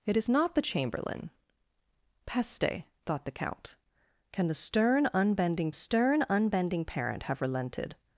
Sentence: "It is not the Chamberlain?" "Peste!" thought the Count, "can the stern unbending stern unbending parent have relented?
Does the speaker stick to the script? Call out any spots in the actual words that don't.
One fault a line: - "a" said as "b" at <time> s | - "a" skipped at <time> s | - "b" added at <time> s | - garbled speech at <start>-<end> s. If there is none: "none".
none